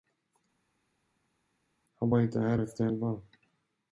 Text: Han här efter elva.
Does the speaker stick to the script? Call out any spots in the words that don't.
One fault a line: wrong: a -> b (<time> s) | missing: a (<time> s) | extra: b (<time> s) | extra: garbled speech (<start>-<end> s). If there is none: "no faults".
extra: var inte (2.1 s)